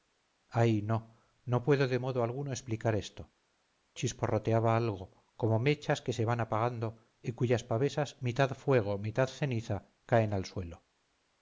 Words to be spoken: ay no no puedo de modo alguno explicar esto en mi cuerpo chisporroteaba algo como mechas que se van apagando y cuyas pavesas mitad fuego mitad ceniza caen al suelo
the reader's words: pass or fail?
fail